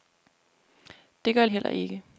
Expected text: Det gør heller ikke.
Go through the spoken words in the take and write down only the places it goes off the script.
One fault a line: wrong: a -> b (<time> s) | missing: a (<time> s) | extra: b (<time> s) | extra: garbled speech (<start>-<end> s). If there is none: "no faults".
no faults